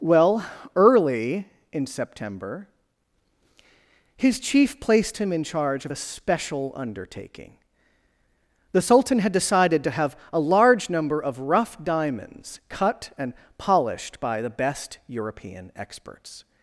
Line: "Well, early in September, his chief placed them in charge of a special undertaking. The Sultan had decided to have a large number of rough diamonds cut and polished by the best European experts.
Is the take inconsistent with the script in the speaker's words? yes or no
yes